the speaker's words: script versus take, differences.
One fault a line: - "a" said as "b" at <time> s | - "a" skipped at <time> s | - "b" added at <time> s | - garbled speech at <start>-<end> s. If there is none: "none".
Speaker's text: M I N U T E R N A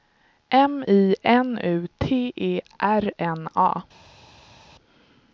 none